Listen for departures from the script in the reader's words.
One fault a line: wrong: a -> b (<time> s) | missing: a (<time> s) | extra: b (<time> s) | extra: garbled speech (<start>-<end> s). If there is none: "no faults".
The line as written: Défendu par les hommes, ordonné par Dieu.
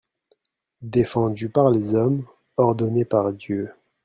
no faults